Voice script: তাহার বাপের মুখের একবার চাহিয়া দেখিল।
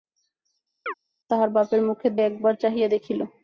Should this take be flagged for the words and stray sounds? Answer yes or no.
yes